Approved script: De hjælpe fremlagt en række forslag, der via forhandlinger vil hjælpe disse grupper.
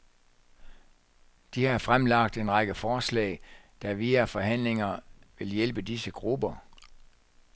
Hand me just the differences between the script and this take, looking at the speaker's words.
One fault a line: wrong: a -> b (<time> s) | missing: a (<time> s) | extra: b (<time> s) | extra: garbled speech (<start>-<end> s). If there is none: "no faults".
wrong: hjælpe -> har (1.6 s)